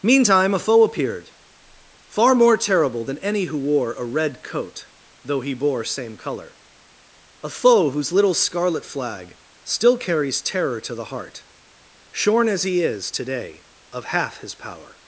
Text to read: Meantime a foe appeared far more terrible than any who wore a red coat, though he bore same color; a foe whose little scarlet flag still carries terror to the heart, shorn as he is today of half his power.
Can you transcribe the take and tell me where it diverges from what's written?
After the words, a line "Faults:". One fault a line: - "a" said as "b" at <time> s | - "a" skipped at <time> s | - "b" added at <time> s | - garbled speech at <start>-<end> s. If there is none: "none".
Meantime a foe appeared far more terrible than any who wore a red coat, though he bore same color; a foe whose little scarlet flag still carries terror to the heart, shorn as he is today of half his power.
Faults:
none